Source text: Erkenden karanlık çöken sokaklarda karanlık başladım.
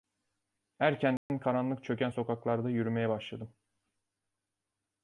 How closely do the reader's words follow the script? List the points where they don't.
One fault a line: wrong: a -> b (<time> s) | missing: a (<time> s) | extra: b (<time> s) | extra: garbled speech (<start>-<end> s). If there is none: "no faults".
wrong: karanlık -> yürümeye (2.7 s)